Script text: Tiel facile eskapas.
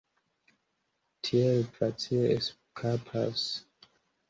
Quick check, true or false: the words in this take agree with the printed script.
true